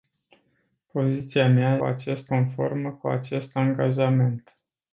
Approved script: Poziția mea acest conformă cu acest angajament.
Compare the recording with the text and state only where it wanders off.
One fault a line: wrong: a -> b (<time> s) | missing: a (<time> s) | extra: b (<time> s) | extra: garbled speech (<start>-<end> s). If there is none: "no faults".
no faults